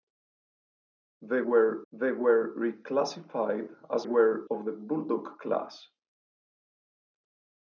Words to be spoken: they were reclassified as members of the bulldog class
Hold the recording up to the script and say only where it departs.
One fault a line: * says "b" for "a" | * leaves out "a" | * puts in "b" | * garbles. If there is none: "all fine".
* puts in "they were"
* says "were" for "members"